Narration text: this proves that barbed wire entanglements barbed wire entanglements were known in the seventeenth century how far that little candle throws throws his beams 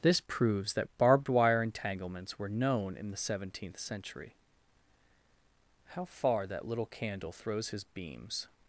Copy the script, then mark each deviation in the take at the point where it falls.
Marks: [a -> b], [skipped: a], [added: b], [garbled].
this proves that barbed wire entanglements [skipped: barbed wire entanglements] were known in the seventeenth century how far that little candle throws [skipped: throws] his beams